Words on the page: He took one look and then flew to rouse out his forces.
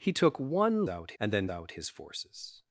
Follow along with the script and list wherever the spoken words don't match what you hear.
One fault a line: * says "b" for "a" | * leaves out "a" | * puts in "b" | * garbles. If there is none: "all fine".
* says "out" for "look"
* leaves out "flew to rouse"